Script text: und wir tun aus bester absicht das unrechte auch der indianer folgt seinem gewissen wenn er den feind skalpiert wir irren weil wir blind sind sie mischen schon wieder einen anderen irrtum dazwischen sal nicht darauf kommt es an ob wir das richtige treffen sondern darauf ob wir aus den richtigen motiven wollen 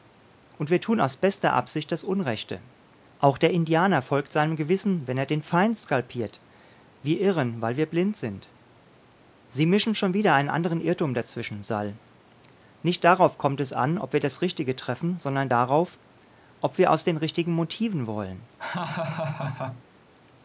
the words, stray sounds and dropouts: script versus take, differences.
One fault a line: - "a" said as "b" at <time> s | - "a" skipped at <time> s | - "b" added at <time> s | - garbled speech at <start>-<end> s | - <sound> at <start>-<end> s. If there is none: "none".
- laugh at 18.6-19.8 s